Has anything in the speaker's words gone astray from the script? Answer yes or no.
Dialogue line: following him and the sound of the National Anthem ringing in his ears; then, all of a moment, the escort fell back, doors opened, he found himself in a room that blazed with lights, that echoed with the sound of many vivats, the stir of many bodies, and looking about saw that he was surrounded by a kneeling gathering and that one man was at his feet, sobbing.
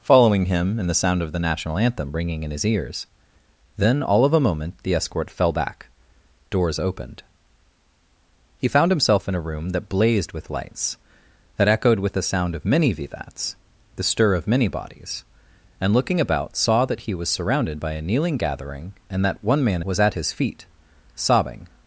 no